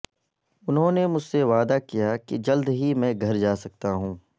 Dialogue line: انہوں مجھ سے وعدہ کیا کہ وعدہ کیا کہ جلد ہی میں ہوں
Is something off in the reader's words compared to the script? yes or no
yes